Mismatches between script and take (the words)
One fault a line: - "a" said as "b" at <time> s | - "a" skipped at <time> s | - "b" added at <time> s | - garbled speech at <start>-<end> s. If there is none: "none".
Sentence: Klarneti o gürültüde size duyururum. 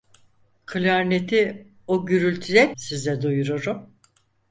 none